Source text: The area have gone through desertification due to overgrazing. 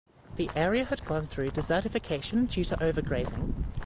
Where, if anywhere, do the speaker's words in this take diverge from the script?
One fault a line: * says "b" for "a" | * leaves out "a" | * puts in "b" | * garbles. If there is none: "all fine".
* says "had" for "have"